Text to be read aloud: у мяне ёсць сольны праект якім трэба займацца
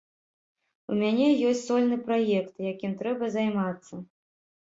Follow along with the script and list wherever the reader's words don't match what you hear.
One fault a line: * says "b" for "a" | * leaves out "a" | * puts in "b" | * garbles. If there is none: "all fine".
all fine